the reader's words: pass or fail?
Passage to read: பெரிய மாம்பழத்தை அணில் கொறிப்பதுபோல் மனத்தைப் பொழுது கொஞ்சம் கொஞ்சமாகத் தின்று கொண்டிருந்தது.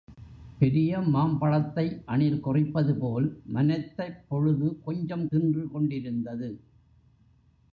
fail